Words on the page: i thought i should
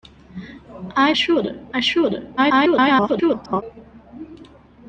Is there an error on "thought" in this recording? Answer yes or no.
yes